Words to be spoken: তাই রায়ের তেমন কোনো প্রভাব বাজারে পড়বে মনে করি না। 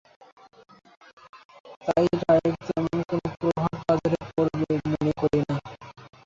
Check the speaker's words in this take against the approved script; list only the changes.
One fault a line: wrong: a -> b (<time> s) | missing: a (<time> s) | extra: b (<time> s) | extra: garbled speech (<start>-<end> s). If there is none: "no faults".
no faults